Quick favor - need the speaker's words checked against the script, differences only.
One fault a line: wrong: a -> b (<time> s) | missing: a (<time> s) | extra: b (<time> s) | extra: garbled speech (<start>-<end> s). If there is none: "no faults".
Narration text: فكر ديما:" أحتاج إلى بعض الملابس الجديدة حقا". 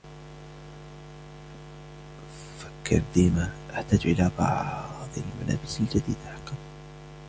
no faults